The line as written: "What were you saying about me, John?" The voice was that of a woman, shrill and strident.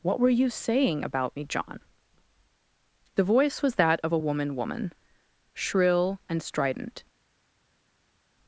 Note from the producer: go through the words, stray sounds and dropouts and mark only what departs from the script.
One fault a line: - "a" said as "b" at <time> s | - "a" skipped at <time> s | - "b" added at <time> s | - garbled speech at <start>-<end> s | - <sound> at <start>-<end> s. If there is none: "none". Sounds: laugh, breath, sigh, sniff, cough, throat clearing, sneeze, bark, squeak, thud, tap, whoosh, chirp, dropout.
- "woman" added at 4.5 s